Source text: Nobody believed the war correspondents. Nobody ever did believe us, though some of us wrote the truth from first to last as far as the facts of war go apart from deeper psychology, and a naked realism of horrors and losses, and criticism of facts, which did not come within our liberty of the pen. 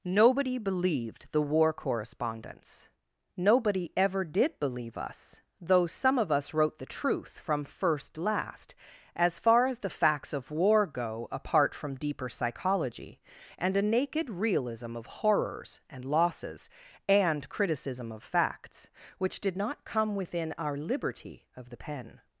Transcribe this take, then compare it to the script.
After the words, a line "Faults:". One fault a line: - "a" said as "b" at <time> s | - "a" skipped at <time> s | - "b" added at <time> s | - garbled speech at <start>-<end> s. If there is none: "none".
Nobody believed the war correspondents. Nobody ever did believe us, though some of us wrote the truth from first last as far as the facts of war go apart from deeper psychology, and a naked realism of horrors and losses, and criticism of facts, which did not come within our liberty of the pen.
Faults:
- "to" skipped at 8.2 s